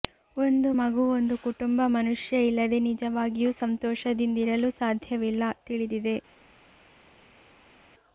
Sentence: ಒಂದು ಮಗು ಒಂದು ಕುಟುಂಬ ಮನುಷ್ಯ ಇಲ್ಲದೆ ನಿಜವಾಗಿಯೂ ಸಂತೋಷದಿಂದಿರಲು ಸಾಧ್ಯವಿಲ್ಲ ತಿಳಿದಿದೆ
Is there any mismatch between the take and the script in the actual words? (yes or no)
no